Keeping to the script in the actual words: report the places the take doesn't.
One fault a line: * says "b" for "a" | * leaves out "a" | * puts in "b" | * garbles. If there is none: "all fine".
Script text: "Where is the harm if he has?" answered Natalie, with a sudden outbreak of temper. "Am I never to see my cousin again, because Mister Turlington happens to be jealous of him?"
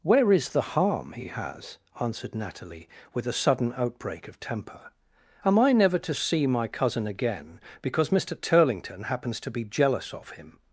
* leaves out "if"